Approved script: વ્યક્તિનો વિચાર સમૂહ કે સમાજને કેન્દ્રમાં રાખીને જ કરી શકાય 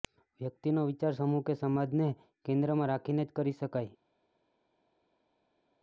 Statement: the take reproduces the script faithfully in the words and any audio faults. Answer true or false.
true